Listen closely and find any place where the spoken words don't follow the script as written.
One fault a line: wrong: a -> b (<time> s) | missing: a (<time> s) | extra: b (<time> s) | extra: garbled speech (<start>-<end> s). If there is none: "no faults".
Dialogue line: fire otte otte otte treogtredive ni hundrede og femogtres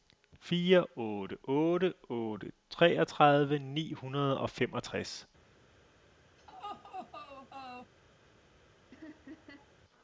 no faults